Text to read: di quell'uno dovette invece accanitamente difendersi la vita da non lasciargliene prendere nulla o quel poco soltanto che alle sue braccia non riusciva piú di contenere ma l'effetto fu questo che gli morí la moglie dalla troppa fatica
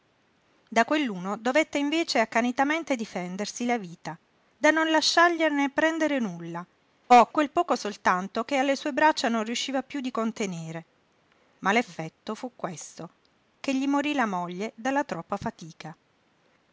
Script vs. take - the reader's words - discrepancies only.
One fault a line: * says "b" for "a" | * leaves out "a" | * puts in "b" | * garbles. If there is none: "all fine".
* says "da" for "di"